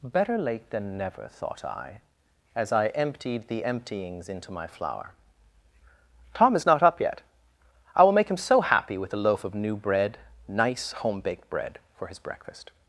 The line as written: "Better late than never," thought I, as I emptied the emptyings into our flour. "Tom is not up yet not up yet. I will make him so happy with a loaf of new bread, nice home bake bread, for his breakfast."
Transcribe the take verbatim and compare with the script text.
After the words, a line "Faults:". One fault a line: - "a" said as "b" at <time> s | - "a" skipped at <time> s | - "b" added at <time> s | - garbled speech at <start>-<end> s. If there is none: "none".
"Better late than never," thought I, as I emptied the emptyings into my flour. "Tom is not up yet. I will make him so happy with a loaf of new bread, nice home baked bread, for his breakfast."
Faults:
- "our" said as "my" at 4.5 s
- "not up yet" skipped at 7.2 s
- "bake" said as "baked" at 11.2 s